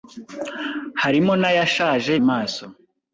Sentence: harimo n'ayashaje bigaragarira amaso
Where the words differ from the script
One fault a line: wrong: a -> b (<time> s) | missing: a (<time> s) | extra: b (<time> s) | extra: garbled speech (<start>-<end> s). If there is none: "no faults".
missing: bigaragarira (2.1 s)